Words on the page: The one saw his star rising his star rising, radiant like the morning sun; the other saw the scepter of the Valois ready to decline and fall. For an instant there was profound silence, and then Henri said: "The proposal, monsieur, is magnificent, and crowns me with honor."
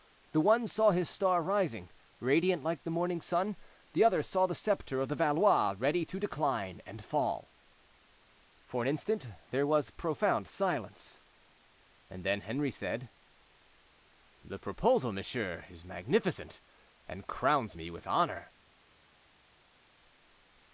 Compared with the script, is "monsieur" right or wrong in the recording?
right